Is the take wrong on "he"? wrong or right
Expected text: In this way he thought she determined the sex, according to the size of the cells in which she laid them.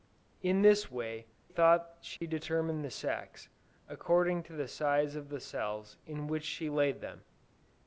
wrong